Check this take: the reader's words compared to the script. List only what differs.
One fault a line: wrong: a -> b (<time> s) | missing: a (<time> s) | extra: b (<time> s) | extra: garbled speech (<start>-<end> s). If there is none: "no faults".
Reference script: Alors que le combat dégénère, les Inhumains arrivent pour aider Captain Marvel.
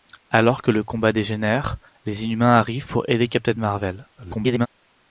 extra: garbled speech (4.2-4.7 s)